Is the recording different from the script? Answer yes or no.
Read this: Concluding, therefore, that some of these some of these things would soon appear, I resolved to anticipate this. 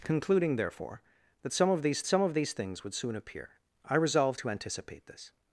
no